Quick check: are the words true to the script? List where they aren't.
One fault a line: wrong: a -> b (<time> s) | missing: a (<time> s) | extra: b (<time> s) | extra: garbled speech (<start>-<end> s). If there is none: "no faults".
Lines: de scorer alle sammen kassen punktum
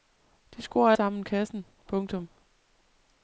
missing: alle (0.9 s)